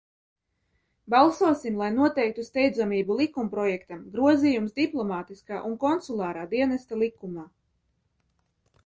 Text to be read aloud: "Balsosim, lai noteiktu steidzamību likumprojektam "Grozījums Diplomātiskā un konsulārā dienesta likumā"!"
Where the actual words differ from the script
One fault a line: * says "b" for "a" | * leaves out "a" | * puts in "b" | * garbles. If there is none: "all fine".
all fine